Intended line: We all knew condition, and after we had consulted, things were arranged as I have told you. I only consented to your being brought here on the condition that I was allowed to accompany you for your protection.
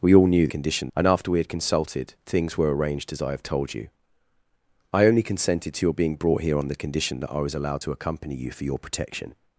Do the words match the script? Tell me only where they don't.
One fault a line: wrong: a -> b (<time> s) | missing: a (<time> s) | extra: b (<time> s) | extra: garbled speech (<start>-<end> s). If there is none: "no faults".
no faults